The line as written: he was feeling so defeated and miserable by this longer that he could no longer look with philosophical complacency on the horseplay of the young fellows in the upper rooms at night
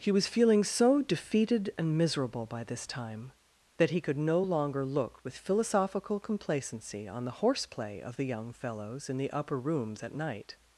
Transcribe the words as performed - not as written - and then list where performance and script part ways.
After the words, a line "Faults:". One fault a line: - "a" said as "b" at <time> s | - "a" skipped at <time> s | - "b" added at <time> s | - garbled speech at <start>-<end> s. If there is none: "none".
he was feeling so defeated and miserable by this time that he could no longer look with philosophical complacency on the horseplay of the young fellows in the upper rooms at night
Faults:
- "longer" said as "time" at 2.9 s